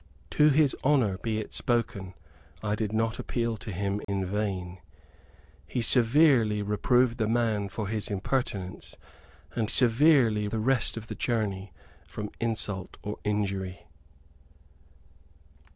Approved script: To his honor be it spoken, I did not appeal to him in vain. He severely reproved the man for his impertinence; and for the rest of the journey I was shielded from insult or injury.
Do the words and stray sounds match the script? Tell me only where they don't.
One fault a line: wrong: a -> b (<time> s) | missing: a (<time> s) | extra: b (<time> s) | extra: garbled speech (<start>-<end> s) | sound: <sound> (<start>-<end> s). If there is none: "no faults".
sound: dropout (4.0-4.1 s)
wrong: for -> severely (9.7 s)
missing: I was shielded (11.7 s)